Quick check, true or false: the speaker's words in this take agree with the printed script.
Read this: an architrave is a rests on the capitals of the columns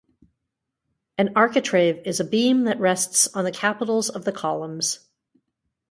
false